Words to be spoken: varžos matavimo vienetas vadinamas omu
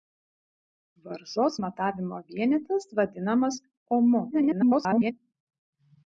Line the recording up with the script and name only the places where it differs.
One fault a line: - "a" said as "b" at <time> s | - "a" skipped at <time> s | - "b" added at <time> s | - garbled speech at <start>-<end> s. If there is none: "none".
- garbled speech at 4.3-5.1 s